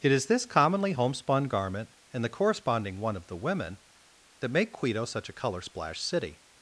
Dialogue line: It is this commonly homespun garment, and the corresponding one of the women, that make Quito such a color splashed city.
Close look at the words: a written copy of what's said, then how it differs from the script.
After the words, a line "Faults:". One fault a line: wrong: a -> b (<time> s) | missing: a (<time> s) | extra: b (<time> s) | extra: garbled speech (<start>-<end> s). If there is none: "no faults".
It is this commonly homespun garment, and the corresponding one of the women, that make Quito such a color splashed city.
Faults:
no faults